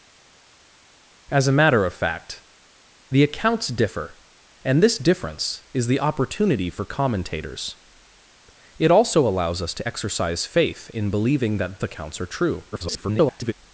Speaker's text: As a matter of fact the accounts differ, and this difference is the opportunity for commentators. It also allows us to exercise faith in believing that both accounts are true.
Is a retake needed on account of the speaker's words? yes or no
yes